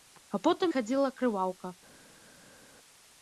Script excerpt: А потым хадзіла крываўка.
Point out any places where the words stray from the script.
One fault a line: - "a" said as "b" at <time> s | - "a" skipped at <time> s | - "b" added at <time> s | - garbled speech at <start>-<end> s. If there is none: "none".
none